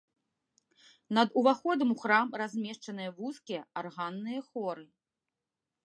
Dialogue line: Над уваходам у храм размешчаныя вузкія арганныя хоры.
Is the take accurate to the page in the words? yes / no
yes